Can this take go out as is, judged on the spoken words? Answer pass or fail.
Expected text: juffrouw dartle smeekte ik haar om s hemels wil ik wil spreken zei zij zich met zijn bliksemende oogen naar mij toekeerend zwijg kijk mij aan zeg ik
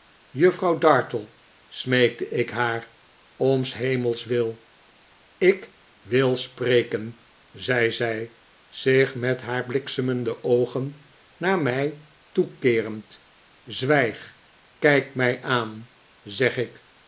fail